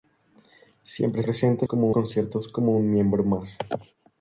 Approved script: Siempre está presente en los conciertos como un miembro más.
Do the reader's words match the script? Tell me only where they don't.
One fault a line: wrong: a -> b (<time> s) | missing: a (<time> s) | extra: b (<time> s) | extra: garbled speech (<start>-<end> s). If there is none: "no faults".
missing: está (1.2 s)
wrong: los -> como (1.6 s)